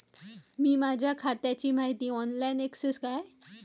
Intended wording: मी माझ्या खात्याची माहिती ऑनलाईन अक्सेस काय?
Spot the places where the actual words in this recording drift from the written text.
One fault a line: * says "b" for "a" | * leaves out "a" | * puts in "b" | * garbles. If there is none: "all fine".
all fine